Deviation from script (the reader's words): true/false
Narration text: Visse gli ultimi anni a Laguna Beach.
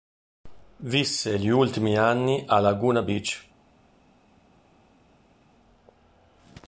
false